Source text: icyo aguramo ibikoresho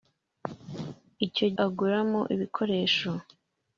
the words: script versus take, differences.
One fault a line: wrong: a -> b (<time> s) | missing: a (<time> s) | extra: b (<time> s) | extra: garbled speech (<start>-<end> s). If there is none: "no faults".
no faults